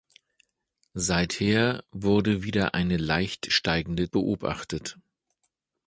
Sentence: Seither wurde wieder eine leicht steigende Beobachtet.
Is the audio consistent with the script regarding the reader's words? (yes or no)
yes